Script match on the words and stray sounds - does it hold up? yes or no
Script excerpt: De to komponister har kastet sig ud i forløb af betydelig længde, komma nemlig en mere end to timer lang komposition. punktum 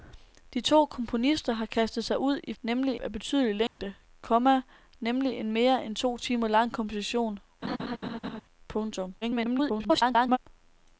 no